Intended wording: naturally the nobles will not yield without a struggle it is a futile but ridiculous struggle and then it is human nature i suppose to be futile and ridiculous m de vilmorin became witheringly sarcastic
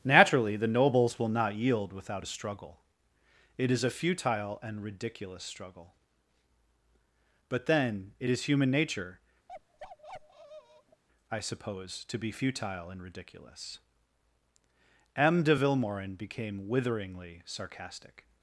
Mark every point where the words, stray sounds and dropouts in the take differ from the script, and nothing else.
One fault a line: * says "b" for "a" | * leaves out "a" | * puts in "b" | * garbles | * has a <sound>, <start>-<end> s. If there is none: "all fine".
* says "and" for "but"
* says "but" for "and"
* has a bark, 9.5-11.0 s